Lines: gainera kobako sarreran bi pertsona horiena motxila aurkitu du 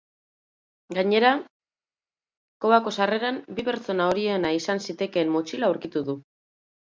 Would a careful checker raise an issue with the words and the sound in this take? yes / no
yes